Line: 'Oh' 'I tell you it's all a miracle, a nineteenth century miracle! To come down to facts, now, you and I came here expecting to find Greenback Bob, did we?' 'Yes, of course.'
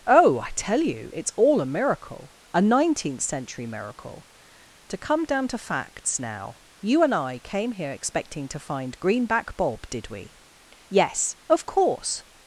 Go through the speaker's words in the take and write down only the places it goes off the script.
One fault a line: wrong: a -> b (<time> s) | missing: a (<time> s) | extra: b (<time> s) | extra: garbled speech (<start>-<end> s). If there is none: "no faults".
no faults